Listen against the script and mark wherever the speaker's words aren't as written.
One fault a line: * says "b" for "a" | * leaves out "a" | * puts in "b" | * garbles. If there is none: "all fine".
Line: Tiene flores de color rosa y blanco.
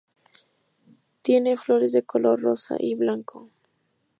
all fine